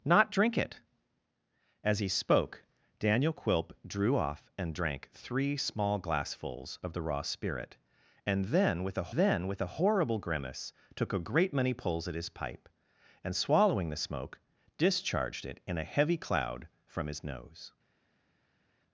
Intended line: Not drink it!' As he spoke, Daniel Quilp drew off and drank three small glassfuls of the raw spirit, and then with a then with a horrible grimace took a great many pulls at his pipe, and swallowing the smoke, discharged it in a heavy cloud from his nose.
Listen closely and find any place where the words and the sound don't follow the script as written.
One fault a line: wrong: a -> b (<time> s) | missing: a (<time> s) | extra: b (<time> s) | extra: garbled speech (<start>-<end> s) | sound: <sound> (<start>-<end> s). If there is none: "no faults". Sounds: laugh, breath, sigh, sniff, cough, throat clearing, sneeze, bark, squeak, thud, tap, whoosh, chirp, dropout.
no faults